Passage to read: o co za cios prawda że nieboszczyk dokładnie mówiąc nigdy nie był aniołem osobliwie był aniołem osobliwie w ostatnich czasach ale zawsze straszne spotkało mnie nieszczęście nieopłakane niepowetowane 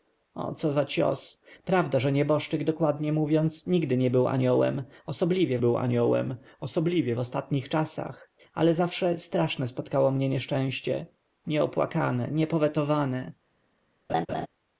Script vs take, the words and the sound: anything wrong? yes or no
yes